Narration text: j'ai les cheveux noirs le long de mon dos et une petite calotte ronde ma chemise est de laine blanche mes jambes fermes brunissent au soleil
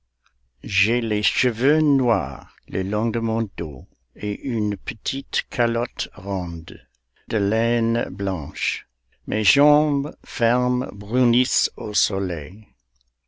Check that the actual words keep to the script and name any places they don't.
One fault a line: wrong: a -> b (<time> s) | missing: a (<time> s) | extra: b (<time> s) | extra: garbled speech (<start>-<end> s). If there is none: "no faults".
missing: ma chemise est (6.8 s)